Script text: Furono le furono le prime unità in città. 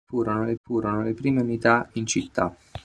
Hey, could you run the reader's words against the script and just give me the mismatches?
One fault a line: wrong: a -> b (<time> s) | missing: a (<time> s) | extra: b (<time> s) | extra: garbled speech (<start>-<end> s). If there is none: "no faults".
no faults